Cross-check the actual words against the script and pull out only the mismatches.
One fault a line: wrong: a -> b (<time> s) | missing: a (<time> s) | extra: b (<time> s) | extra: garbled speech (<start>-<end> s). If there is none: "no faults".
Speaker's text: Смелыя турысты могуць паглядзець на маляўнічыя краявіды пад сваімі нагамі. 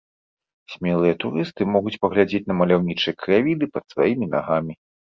no faults